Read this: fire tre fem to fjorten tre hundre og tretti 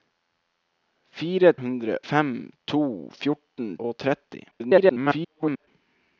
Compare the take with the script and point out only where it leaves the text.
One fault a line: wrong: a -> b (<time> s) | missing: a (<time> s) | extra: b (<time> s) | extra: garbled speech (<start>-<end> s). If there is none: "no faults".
wrong: tre -> hundre (1.6 s)
missing: tre hundre (3.7 s)
extra: garbled speech (4.5-5.7 s)